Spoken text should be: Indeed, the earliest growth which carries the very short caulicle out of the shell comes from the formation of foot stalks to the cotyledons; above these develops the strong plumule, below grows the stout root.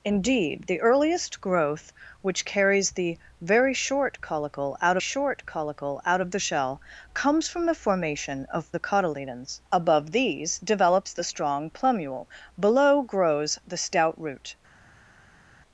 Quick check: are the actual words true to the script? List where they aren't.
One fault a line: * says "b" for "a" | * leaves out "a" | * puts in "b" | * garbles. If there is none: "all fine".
* puts in "short caulicle out"
* leaves out "foot stalks to"